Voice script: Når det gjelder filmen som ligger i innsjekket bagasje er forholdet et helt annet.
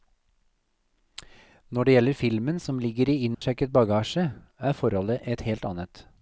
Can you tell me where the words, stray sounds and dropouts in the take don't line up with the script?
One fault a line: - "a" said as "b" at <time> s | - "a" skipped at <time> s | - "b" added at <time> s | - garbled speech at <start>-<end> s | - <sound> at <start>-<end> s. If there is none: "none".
- dropout at 3.3-3.4 s